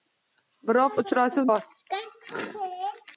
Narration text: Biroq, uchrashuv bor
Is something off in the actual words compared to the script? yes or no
no